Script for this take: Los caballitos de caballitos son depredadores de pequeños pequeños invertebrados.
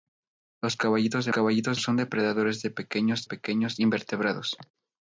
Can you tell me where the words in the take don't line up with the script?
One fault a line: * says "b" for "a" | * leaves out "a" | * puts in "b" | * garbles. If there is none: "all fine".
all fine